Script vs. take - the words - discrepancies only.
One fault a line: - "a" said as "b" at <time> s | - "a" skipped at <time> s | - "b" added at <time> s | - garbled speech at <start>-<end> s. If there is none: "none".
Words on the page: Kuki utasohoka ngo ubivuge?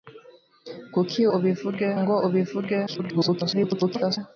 - "utasohoka" said as "ubivuge" at 1.4 s
- garbled speech at 2.9-4.2 s